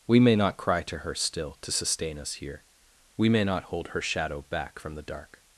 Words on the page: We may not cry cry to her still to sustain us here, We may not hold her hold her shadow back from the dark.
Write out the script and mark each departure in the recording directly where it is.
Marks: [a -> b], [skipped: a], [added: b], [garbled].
We may not cry [skipped: cry] to her still to sustain us here, We may not hold her [skipped: hold her] shadow back from the dark.